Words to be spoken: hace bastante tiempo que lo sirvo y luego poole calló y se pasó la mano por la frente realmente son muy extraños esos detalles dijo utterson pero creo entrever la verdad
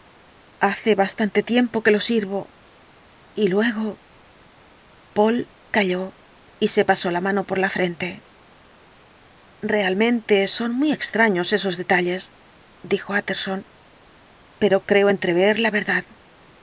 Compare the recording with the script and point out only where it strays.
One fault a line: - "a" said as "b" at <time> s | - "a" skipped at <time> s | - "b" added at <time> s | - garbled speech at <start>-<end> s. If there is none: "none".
none